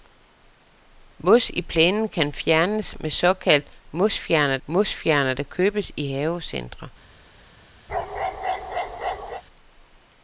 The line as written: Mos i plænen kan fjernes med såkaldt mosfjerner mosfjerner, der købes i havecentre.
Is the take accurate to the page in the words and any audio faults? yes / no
no